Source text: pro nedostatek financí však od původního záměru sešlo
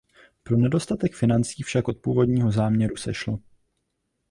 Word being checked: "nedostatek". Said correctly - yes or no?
yes